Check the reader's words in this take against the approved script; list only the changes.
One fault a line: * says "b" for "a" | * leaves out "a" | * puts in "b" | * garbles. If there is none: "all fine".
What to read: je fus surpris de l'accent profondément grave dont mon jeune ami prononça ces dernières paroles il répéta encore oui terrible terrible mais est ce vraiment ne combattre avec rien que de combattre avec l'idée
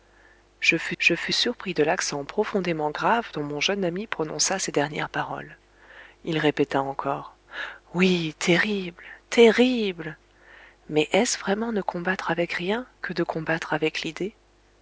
* puts in "je fus"